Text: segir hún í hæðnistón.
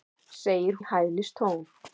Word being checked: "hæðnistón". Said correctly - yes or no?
yes